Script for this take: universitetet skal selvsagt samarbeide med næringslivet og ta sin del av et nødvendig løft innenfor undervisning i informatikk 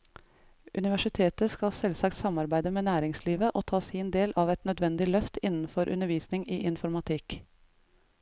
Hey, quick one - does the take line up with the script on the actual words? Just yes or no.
yes